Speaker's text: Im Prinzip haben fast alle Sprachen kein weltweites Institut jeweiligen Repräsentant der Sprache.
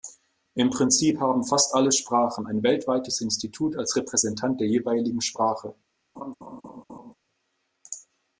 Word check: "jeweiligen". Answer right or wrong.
wrong